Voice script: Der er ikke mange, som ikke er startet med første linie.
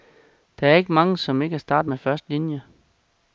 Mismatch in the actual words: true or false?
false